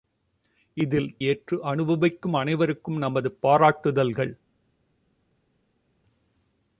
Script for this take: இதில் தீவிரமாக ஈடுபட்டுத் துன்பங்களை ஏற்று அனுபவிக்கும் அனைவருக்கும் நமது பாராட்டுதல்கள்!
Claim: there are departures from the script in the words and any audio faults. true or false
true